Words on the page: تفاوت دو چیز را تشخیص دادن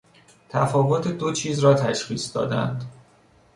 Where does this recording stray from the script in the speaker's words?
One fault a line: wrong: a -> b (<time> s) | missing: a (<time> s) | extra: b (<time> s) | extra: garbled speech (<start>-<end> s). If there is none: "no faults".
no faults